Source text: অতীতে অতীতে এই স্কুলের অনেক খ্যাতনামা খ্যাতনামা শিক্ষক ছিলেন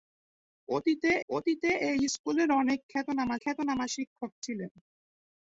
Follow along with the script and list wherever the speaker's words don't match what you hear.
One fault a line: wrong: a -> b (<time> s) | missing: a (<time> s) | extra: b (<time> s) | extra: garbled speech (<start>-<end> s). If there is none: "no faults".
no faults